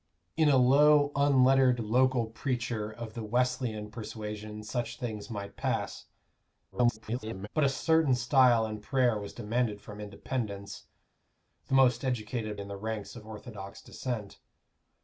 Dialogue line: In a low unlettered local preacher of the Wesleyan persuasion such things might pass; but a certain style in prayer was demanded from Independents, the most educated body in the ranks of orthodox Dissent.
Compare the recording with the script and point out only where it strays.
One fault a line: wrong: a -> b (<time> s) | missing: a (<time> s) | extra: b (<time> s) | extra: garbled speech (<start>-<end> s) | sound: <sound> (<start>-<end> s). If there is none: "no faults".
extra: garbled speech (6.7-7.5 s)
missing: body (12.6 s)